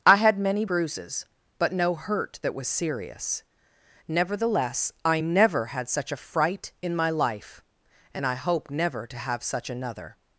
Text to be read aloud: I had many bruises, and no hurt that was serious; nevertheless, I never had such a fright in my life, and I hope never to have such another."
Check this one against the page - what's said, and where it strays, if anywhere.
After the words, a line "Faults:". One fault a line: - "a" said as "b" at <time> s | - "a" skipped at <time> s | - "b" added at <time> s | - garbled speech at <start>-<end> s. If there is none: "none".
I had many bruises, but no hurt that was serious; nevertheless, I never had such a fright in my life, and I hope never to have such another."
Faults:
- "and" said as "but" at 1.6 s